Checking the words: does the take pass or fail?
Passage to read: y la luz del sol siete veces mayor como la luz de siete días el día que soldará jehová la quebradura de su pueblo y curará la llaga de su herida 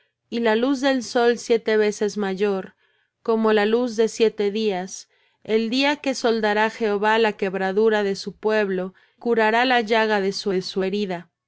fail